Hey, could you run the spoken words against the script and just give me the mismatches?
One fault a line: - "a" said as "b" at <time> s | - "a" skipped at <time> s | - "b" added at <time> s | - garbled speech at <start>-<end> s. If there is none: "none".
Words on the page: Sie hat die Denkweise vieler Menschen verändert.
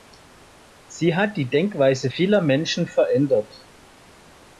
none